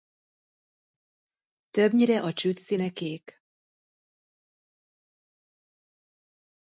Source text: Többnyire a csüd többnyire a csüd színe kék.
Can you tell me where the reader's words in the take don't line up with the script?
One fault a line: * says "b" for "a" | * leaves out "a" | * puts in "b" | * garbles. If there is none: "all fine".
* leaves out "többnyire a csüd"